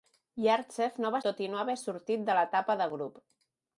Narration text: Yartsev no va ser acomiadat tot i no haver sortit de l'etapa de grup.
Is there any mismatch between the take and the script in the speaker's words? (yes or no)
yes